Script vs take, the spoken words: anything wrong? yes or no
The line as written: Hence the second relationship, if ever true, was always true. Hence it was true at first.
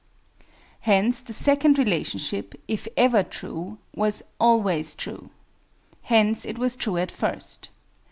no